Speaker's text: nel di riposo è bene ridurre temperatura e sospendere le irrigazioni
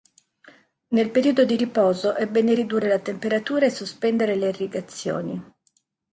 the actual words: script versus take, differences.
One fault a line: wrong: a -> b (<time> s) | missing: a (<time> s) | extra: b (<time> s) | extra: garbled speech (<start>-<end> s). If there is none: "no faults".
extra: periodo (1.1 s)
extra: la (2.9 s)